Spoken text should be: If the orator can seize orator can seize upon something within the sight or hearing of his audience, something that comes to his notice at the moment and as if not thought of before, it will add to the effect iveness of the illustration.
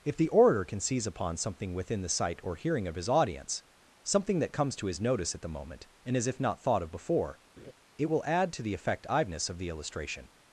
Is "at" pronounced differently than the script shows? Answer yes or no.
no